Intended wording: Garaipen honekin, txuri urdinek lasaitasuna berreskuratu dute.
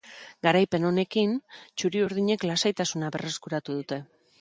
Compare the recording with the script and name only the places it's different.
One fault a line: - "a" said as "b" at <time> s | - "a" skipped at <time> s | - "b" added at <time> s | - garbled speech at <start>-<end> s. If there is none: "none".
none